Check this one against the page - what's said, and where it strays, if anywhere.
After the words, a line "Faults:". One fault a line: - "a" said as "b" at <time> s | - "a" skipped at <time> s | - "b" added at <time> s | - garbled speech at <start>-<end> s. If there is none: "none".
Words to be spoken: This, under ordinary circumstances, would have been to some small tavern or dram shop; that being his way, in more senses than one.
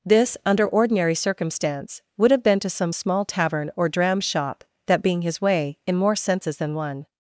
This, under ordinary circumstance, would have been to some small tavern or dram shop; that being his way, in more senses than one.
Faults:
- "circumstances" said as "circumstance" at 1.1 s